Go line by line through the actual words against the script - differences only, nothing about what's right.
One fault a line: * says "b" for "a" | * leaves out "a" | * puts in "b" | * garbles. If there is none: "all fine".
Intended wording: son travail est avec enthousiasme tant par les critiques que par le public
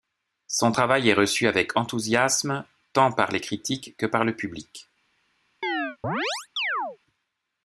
* puts in "reçu"